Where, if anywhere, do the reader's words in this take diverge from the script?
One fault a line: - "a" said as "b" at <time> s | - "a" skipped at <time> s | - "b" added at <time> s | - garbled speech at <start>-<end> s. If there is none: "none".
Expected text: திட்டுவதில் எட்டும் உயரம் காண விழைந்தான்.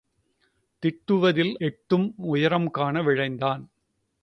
none